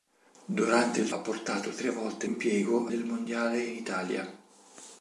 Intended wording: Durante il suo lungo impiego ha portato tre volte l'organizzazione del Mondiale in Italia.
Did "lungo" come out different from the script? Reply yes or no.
yes